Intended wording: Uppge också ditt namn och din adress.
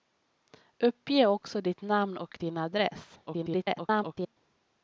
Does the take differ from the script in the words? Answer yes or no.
yes